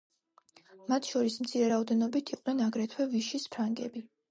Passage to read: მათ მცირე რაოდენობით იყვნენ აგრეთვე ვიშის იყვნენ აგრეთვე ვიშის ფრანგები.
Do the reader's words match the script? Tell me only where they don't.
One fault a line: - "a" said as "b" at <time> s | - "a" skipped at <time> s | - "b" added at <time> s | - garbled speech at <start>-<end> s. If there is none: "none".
- "შორის" added at 1.1 s
- "იყვნენ აგრეთვე ვიშის" skipped at 3.5 s